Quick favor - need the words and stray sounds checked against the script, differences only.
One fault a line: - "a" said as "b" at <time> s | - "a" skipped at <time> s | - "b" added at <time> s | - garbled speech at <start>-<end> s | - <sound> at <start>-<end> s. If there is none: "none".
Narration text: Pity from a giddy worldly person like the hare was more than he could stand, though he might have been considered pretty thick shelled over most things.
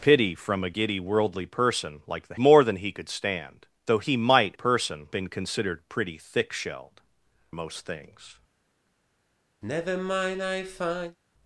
- "hare was" skipped at 2.4 s
- "have" said as "person" at 4.5 s
- "over" skipped at 7.0 s
- sigh at 9.6-11.2 s